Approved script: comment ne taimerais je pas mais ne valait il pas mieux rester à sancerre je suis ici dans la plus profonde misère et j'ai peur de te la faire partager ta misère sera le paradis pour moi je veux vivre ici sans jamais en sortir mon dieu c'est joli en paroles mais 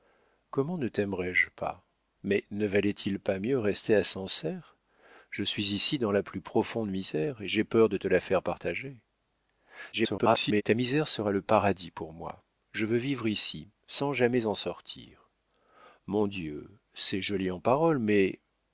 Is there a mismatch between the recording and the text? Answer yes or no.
yes